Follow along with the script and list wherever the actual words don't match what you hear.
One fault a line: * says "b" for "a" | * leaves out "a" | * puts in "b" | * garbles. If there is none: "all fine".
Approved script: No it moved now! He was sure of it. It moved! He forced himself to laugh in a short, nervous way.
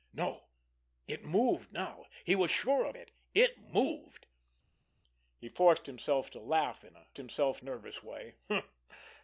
* says "himself" for "short"